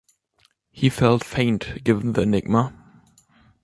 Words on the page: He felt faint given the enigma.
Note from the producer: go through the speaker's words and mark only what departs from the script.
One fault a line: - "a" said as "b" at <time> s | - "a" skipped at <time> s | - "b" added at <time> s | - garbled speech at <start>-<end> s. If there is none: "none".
none